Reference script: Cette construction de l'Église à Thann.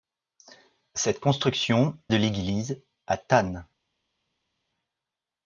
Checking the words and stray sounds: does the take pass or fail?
pass